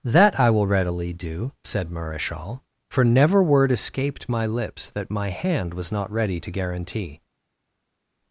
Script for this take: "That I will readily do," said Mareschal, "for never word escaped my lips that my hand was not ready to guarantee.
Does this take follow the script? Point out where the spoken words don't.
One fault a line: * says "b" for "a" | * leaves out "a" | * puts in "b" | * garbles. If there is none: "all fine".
all fine